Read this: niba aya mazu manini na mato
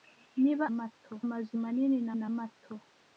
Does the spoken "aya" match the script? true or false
false